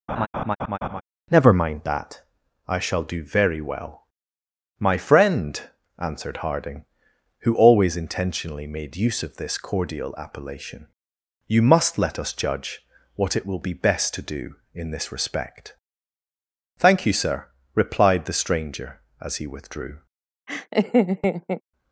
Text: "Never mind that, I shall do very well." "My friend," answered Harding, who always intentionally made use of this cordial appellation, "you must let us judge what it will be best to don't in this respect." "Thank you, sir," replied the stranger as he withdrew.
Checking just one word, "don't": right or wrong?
wrong